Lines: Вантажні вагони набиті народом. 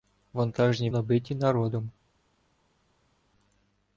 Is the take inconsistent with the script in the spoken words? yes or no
yes